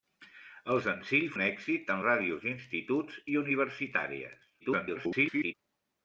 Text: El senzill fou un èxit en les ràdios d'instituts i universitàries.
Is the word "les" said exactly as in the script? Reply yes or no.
no